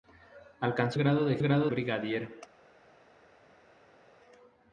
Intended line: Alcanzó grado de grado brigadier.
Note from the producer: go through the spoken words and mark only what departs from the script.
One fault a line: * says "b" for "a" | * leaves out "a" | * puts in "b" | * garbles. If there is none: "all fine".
all fine